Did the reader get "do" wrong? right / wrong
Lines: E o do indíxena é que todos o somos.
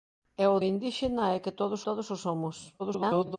wrong